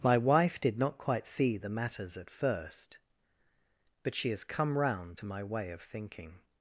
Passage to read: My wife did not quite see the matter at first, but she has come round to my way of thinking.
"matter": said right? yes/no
no